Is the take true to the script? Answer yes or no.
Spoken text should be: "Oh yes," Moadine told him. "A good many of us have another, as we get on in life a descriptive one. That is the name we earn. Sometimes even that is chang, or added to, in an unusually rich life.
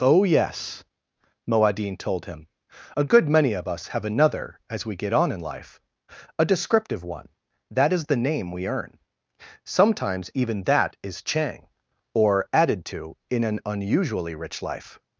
yes